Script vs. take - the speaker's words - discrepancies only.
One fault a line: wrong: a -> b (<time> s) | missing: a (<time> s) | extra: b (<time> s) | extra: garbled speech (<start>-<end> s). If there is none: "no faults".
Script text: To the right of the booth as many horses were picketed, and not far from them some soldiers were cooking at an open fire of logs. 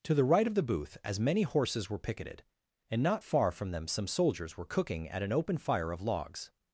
no faults